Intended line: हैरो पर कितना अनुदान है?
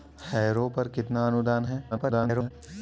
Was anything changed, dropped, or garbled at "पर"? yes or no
no